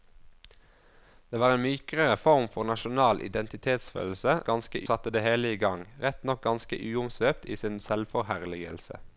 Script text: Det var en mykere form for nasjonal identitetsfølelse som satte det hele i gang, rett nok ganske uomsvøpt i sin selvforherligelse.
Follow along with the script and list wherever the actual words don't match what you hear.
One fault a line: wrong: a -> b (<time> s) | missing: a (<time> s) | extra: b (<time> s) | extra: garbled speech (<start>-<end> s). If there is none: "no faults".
wrong: som -> ganske (4.5 s)